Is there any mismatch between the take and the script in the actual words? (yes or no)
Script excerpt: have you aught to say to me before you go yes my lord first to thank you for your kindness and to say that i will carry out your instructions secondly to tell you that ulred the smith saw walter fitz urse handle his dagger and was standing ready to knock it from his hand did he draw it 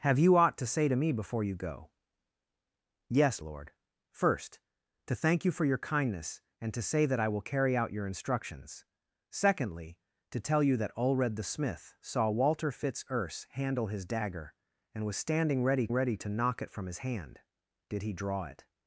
yes